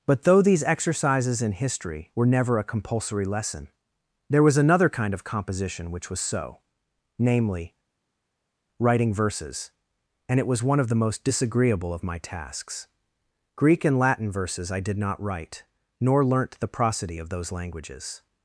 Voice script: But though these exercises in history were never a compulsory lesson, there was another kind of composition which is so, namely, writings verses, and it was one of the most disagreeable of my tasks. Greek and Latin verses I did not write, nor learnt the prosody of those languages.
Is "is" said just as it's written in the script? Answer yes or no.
no